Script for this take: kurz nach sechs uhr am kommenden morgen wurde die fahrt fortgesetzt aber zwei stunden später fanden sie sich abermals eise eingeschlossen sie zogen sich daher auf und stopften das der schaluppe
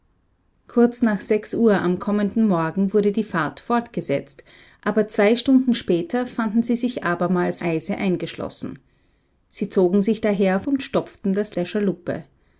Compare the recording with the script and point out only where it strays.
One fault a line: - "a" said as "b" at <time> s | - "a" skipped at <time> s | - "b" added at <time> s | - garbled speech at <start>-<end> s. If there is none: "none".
none